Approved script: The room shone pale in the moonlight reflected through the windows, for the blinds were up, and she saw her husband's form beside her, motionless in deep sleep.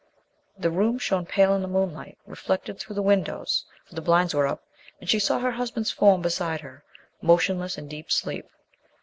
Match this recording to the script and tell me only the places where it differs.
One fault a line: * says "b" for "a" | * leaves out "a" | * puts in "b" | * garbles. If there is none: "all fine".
all fine